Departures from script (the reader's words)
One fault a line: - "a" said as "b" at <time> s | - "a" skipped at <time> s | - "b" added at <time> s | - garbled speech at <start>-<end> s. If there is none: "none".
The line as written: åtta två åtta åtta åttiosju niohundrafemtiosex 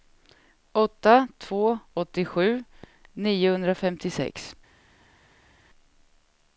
- "åtta åtta" skipped at 1.8 s